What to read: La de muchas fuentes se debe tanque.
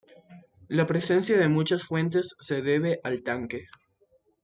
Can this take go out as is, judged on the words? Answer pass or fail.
fail